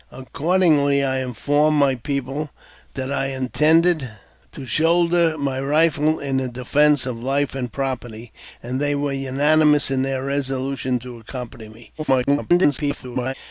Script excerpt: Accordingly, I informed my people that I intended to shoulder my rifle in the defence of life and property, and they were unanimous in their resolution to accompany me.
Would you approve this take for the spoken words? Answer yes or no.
no